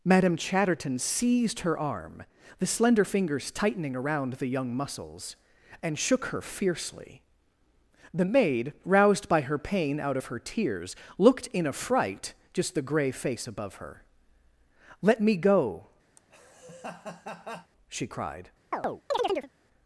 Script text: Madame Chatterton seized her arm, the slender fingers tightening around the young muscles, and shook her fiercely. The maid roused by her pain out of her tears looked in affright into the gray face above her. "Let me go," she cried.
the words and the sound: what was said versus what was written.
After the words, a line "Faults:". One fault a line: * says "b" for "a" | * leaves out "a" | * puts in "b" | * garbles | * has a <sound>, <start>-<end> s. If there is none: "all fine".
Madame Chatterton seized her arm, the slender fingers tightening around the young muscles, and shook her fiercely. The maid roused by her pain out of her tears looked in affright just the gray face above her. "Let me go," she cried.
Faults:
* says "just" for "into"
* has a laugh, 16.2-17.7 s
* has a chirp, 18.7-19.5 s